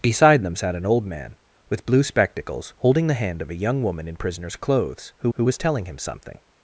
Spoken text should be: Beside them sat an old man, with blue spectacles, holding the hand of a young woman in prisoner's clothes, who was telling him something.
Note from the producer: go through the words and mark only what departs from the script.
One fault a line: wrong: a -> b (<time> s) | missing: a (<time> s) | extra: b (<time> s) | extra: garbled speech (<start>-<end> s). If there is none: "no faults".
extra: who (5.3 s)